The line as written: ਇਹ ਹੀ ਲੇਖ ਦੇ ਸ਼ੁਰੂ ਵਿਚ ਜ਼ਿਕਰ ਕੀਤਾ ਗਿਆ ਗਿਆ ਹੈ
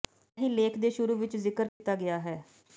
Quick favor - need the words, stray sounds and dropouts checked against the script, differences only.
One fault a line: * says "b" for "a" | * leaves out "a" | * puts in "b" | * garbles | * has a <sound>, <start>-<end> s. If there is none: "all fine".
* has a dropout, 1.7-1.8 s
* leaves out "ਗਿਆ"